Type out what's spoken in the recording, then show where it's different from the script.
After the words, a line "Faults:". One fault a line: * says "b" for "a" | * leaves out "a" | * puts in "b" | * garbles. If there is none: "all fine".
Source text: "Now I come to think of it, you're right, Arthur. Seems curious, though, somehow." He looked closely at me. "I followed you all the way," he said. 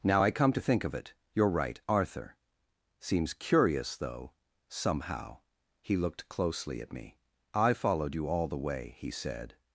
"Now I come to think of it, you're right, Arthur. Seems curious, though, somehow." He looked closely at me. "I followed you all the way," he said.
Faults:
all fine